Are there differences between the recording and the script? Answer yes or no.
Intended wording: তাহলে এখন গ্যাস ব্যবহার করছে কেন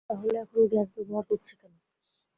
no